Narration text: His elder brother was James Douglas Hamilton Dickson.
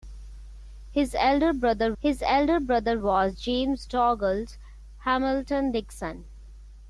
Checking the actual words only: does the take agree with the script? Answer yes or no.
no